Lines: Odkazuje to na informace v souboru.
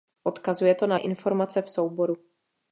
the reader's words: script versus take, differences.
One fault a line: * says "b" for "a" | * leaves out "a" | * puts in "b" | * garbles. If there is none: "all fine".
all fine